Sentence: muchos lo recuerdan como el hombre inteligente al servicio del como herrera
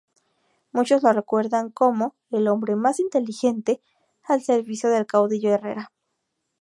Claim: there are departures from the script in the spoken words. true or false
true